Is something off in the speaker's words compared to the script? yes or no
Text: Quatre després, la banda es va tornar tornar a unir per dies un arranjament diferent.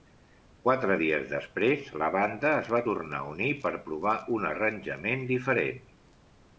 yes